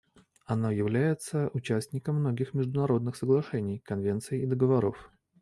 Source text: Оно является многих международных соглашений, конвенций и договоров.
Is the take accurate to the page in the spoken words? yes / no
no